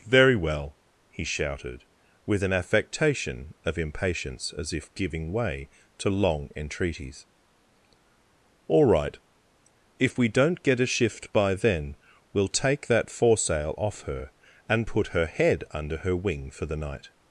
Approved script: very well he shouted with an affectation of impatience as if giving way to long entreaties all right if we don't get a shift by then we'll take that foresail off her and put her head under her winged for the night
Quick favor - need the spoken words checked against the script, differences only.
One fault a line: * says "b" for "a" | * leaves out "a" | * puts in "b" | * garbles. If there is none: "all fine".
* says "wing" for "winged"